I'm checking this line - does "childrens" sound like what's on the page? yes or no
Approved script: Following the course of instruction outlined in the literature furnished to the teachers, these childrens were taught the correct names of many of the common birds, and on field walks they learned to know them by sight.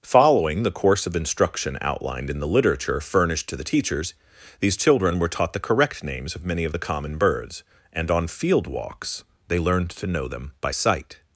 no